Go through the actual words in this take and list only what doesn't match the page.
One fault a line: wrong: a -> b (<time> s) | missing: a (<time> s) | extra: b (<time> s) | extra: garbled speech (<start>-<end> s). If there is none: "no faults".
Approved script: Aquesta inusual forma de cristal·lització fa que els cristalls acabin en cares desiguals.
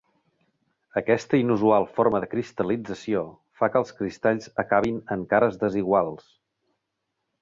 no faults